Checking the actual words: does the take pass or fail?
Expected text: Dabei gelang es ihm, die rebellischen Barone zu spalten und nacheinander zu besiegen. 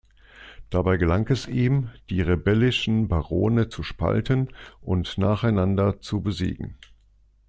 pass